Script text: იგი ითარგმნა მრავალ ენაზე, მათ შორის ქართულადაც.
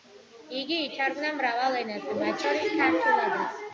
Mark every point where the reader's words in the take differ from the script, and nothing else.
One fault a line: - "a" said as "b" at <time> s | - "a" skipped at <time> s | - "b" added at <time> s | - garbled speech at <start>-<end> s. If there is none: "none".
none